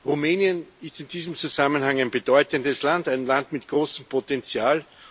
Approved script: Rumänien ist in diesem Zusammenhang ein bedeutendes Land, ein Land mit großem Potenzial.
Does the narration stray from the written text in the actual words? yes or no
no